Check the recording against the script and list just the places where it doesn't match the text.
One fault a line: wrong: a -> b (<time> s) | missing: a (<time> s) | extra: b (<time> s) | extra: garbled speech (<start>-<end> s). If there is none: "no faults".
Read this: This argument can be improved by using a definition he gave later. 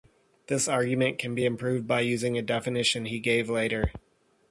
no faults